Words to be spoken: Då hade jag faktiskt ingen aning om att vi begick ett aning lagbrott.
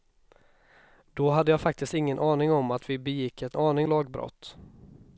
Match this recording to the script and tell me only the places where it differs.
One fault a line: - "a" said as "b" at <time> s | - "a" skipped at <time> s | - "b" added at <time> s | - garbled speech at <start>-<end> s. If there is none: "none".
none